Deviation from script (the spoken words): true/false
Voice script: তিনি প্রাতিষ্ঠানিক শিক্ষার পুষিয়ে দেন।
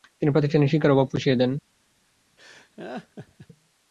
true